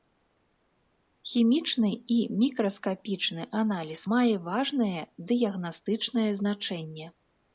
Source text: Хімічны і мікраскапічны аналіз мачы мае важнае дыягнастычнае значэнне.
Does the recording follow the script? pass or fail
fail